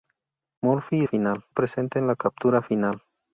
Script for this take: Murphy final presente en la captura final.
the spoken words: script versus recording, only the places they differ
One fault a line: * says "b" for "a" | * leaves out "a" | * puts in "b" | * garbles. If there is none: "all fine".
all fine